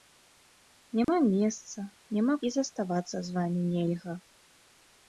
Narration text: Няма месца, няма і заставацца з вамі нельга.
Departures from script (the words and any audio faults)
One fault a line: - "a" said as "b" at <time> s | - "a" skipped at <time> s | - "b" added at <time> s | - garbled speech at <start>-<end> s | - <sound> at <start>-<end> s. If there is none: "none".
- dropout at 1.0-1.1 s